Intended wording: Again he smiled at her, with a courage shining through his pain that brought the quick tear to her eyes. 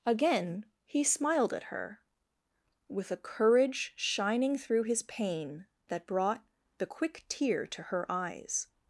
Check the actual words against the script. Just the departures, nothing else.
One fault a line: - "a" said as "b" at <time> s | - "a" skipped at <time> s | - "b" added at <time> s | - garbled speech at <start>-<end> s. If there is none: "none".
none